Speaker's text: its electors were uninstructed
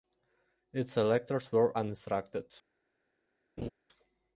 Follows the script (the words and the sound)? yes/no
no